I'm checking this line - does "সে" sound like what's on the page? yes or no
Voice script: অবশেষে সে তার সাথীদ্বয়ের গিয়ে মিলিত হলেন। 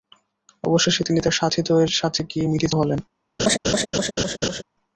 no